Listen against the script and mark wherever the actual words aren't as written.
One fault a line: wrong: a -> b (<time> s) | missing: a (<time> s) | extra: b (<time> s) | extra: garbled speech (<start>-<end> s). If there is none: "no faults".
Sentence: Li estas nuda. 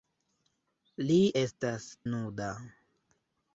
no faults